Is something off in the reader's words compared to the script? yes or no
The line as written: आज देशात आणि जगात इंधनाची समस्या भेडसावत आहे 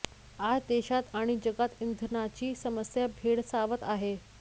no